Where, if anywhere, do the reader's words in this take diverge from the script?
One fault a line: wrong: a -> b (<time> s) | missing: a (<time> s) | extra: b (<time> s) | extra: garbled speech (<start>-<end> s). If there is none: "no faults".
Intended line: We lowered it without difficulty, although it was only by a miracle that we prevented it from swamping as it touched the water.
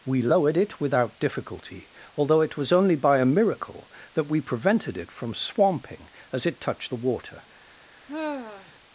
no faults